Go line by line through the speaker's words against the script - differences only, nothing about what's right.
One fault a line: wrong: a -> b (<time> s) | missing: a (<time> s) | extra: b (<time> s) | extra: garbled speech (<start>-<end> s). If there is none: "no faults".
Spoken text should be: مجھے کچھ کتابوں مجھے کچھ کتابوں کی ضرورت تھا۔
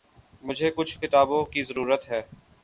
missing: مجھے کچھ کتابوں (1.4 s)
wrong: تھا -> ہے (2.1 s)